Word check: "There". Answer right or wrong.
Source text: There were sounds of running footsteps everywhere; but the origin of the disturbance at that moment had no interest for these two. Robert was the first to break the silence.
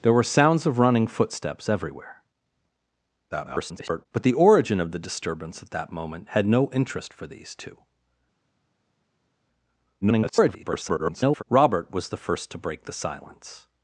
right